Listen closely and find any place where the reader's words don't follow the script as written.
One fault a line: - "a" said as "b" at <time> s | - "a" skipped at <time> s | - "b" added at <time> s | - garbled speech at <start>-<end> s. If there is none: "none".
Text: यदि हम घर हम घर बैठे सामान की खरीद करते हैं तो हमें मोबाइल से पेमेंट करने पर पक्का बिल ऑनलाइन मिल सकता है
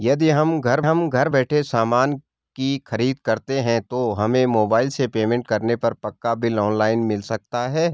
none